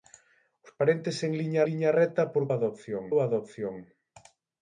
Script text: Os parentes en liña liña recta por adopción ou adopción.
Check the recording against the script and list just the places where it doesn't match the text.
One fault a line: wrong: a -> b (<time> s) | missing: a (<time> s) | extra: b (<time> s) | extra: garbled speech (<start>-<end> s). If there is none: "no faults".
no faults